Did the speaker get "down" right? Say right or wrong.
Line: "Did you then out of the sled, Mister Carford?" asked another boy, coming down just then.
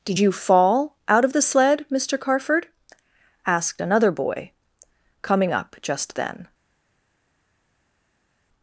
wrong